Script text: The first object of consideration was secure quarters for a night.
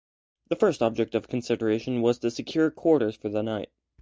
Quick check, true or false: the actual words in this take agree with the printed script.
false